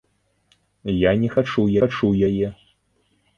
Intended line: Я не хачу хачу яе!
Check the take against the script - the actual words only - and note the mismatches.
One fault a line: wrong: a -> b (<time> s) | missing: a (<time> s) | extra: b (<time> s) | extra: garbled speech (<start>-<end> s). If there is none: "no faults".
no faults